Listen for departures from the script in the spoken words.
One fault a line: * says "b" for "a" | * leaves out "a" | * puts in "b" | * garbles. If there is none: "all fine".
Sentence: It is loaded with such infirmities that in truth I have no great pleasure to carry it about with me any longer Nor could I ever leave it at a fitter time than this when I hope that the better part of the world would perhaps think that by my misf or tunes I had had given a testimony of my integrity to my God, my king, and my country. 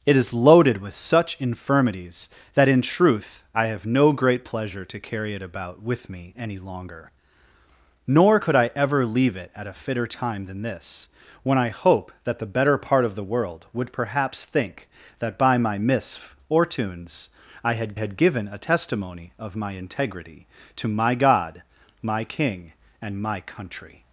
all fine